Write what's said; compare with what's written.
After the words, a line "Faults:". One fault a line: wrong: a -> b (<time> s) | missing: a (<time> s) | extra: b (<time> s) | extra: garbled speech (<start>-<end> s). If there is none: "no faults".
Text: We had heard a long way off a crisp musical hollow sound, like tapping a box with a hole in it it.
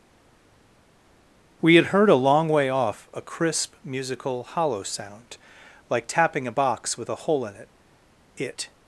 We had heard a long way off a crisp musical hollow sound, like tapping a box with a hole in it it.
Faults:
no faults